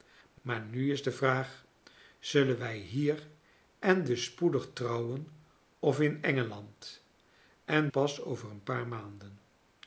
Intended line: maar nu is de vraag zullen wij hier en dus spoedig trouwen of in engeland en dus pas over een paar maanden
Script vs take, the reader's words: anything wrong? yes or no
yes